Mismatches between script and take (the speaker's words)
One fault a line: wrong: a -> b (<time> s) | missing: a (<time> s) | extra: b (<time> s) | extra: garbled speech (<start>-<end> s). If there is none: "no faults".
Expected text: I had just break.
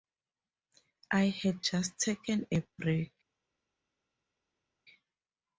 extra: taken a (2.0 s)